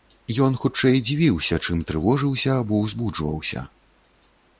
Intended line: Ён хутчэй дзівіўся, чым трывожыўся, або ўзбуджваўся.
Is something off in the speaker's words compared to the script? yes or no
no